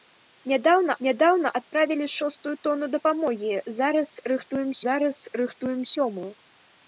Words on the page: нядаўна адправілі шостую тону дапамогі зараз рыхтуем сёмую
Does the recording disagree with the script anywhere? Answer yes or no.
yes